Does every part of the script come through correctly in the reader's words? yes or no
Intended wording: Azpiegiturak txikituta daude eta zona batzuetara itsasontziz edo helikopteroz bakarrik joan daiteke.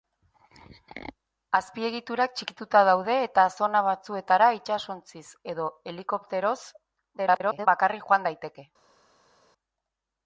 no